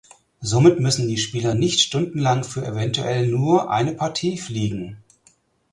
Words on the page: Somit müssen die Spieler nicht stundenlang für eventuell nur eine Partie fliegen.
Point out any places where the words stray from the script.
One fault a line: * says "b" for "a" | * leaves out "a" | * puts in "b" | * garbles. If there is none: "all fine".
all fine